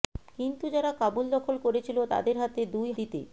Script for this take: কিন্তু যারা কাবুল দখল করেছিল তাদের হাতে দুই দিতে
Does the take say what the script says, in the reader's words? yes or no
yes